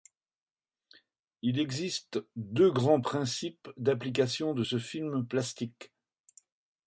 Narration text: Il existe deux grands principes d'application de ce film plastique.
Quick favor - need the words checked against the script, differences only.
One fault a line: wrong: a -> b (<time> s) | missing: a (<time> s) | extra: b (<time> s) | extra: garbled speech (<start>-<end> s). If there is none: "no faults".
no faults